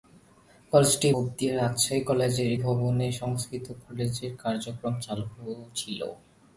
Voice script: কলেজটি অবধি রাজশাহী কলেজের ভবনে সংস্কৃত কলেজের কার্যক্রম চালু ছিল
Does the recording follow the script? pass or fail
pass